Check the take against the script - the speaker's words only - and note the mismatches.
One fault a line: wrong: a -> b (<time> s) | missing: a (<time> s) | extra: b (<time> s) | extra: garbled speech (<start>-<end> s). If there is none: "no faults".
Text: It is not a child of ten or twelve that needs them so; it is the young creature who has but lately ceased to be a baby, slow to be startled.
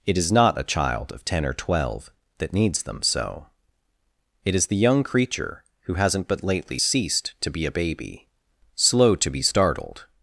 wrong: has -> hasn't (6.0 s)